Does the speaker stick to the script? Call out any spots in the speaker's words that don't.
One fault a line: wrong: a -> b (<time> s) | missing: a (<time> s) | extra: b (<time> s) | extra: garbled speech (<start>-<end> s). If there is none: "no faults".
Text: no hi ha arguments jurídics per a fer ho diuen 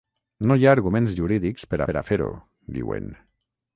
extra: per (1.9 s)